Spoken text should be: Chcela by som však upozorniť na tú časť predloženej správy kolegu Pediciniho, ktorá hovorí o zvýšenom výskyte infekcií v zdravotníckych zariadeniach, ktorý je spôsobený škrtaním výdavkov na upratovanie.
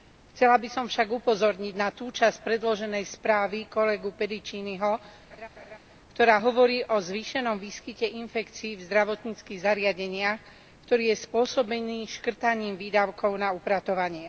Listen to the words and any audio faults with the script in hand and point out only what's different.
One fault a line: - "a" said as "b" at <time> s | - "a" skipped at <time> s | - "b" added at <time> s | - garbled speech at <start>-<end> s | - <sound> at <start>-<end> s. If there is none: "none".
- laugh at 5.3-5.8 s